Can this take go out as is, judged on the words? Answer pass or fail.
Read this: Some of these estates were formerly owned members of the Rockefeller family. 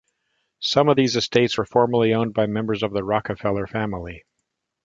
fail